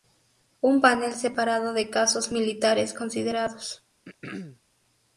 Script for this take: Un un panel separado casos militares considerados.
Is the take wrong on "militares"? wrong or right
right